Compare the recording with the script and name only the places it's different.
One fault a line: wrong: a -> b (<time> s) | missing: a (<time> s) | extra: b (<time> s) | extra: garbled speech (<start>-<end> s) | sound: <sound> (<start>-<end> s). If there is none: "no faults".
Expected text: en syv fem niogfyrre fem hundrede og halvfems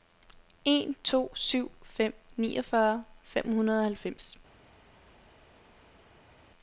extra: to (1.0 s)